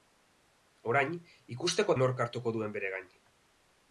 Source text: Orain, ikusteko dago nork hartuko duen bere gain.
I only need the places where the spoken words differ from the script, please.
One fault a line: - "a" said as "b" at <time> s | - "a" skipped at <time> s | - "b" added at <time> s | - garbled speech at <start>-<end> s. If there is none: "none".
- "dago" skipped at 2.0 s